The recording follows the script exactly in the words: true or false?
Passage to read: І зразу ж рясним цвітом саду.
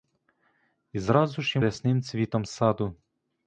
true